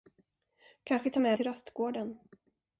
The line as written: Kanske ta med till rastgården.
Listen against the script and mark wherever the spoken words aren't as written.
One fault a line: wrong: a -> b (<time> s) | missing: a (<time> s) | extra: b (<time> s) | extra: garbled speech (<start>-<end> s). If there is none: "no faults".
no faults